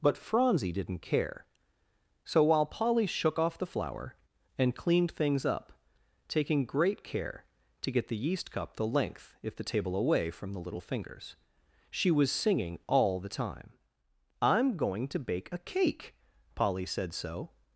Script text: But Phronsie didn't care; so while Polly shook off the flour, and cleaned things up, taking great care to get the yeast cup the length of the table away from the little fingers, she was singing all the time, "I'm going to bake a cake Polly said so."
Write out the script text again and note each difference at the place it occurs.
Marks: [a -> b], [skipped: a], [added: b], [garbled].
But Phronsie didn't care; so while Polly shook off the flour, and cleaned things up, taking great care to get the yeast cup the length [of -> if] the table away from the little fingers, she was singing all the time, "I'm going to bake a cake Polly said so."